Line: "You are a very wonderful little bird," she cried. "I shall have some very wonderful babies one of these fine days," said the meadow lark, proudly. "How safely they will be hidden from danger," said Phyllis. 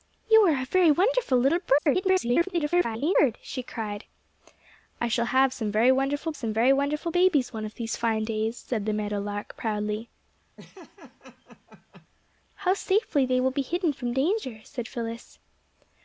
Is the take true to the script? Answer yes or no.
no